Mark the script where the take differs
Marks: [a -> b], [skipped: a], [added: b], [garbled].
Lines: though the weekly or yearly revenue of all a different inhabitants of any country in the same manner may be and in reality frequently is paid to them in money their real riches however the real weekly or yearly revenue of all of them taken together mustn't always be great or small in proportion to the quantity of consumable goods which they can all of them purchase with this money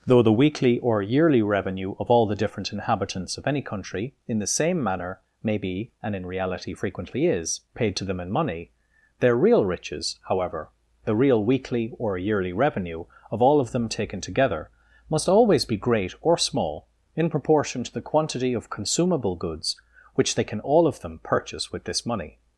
though the weekly or yearly revenue of all [a -> the] different inhabitants of any country in the same manner may be and in reality frequently is paid to them in money their real riches however the real weekly or yearly revenue of all of them taken together [mustn't -> must] always be great or small in proportion to the quantity of consumable goods which they can all of them purchase with this money